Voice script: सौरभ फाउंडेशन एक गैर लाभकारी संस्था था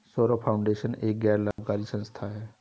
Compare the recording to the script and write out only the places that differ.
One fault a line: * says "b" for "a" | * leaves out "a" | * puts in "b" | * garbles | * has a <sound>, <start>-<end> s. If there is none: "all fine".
* has a dropout, 1.5-1.6 s
* says "है" for "था"